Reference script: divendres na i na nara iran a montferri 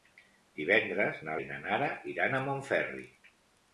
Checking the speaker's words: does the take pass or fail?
pass